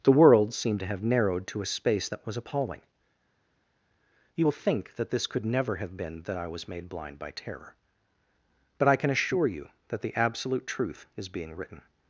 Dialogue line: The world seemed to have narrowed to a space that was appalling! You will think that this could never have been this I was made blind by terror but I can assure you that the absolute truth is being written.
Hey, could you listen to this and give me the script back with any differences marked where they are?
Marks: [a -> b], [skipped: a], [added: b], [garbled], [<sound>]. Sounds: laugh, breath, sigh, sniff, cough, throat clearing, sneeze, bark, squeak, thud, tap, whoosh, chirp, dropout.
The world seemed to have narrowed to a space that was appalling! You will think that this could never have been [this -> that] I was made blind by terror but I can assure you that the absolute truth is being written.